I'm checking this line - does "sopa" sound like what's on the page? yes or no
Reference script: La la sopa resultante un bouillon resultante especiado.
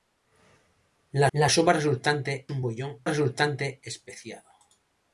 yes